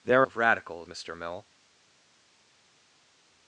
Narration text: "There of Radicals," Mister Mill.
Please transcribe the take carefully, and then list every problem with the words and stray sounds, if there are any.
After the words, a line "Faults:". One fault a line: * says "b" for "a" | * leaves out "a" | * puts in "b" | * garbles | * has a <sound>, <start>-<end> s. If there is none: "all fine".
"There of Radicals," Mister Mill.
Faults:
all fine